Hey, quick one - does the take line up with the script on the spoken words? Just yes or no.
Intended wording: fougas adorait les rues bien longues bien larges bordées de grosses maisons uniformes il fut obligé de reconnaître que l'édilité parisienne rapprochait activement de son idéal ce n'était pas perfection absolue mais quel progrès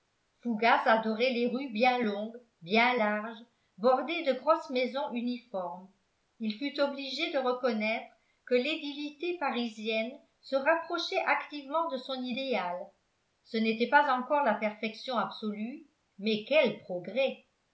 no